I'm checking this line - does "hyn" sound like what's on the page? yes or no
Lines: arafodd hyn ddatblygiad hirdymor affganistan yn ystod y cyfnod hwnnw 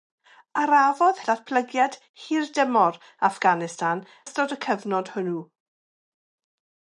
no